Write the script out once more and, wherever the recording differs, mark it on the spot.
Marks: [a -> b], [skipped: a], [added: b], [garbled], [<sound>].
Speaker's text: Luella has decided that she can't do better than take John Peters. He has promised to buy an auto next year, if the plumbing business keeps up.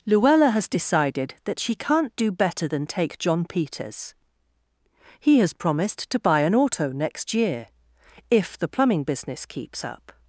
Luella has decided that she can't do better than take John Peters. He has promised to buy an auto next year, if the plumbing business keeps up.